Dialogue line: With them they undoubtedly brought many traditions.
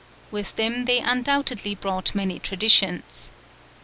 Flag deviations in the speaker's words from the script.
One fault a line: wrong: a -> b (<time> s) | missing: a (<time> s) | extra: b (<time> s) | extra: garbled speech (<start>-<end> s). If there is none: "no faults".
no faults